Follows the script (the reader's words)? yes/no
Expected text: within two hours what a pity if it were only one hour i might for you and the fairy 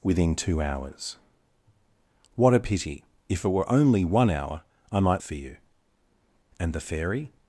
yes